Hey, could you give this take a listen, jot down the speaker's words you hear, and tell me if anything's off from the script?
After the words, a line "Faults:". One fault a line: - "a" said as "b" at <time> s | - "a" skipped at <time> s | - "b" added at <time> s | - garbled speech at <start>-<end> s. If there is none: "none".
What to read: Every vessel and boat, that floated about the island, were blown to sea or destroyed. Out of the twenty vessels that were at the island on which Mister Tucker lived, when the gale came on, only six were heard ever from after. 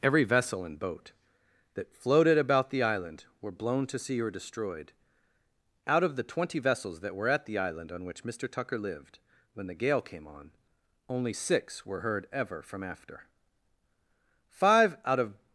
Every vessel and boat, that floated about the island, were blown to sea or destroyed. Out of the twenty vessels that were at the island on which Mister Tucker lived, when the gale came on, only six were heard ever from after. Five out of
Faults:
- "Five out of" added at 14.5 s